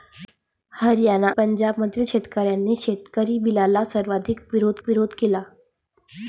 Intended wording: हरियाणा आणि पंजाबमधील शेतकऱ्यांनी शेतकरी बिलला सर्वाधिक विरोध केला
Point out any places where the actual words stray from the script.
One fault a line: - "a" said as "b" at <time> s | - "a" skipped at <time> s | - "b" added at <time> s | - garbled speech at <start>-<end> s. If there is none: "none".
- "आणि" skipped at 1.3 s
- "विरोध" added at 4.9 s